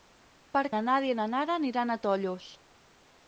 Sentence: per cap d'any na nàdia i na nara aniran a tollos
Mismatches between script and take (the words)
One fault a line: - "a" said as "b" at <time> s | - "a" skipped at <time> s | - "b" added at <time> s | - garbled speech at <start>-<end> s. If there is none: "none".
- "cap d'any" skipped at 0.6 s